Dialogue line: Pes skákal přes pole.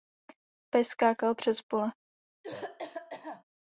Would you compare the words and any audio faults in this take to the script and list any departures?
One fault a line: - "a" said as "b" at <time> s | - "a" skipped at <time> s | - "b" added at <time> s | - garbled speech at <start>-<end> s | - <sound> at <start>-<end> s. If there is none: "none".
- cough at 2.4-3.4 s